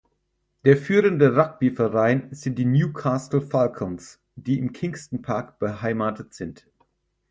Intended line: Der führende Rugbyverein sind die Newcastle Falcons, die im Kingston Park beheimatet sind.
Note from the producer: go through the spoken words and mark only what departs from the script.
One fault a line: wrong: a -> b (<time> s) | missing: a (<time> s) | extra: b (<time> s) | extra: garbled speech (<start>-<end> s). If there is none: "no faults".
no faults